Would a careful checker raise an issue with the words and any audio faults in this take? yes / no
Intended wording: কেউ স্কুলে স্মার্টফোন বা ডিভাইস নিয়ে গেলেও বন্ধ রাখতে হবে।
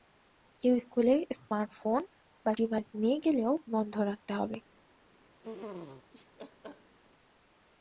yes